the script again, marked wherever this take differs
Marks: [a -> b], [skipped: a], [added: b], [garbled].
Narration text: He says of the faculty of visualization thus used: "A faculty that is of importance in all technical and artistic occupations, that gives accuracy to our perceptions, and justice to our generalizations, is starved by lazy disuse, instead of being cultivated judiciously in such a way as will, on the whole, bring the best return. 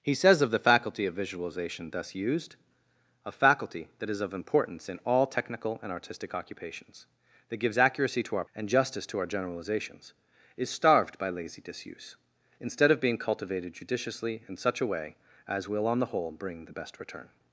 He says of the faculty of visualization thus used: "A faculty that is of importance in all technical and artistic occupations, that gives accuracy to our [skipped: perceptions,] and justice to our generalizations, is starved by lazy disuse, instead of being cultivated judiciously in such a way as will, on the whole, bring the best return.